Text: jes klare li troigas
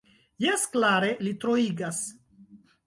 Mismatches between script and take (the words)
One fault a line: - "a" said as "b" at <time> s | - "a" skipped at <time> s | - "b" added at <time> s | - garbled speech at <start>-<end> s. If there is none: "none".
none